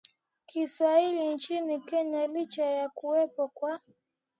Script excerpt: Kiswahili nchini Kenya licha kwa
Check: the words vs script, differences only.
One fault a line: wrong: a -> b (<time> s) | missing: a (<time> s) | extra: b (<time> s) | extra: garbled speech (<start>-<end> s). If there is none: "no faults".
extra: ya kuwepo (2.7 s)